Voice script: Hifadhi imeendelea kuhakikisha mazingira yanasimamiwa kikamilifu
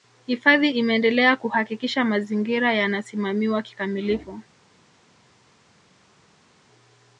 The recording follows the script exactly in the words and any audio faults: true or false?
true